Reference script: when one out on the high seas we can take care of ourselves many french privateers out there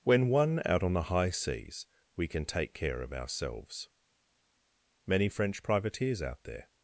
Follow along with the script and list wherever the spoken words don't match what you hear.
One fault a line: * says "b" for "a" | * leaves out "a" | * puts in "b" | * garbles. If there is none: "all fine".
all fine